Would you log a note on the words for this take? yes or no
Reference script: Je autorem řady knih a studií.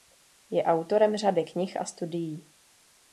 no